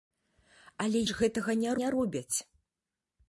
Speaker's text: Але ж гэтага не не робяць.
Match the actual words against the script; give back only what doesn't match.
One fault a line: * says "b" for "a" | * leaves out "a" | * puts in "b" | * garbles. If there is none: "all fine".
all fine